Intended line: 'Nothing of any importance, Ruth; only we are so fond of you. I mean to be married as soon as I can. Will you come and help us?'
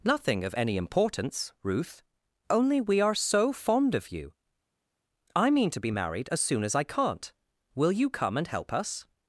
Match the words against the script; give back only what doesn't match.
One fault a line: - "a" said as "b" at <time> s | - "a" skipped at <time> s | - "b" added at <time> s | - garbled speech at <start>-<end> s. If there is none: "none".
- "can" said as "can't" at 6.8 s